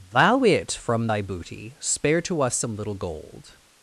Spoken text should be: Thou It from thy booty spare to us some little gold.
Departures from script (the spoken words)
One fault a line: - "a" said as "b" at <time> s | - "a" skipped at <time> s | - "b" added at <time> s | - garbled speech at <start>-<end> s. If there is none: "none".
none